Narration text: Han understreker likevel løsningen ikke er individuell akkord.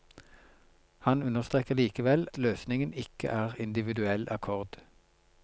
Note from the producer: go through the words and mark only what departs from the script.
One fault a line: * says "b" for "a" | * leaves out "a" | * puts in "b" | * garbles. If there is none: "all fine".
all fine